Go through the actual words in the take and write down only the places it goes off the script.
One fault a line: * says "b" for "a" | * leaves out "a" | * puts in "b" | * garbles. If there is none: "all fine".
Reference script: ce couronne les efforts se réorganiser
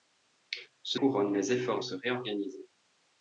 all fine